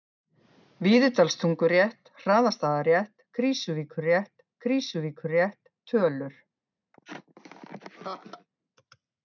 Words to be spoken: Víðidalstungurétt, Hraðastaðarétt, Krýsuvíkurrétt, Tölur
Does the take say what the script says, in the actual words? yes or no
no